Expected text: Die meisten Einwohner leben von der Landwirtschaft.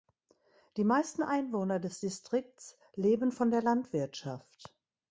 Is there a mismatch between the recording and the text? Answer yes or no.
yes